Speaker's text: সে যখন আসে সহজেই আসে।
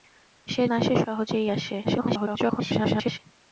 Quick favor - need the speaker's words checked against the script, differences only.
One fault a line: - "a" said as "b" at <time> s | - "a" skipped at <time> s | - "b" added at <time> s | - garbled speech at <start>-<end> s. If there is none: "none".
- "যখন" skipped at 0.6 s
- garbled speech at 1.8-3.2 s